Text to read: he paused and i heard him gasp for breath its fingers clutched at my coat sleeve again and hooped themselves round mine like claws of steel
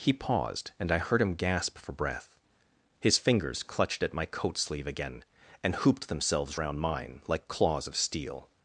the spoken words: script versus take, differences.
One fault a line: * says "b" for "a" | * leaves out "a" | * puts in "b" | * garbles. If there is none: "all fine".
* says "his" for "its"